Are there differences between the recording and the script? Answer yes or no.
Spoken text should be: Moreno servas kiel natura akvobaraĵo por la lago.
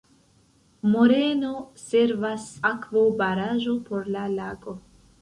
yes